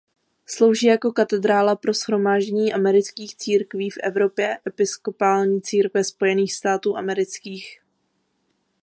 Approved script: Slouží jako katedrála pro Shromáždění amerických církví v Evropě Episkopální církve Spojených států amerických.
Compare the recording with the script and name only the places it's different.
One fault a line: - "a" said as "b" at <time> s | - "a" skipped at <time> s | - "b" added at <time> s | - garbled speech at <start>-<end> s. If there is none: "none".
none